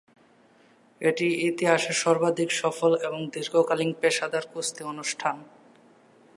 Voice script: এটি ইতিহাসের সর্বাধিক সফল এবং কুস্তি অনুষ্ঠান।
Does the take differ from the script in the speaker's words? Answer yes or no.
yes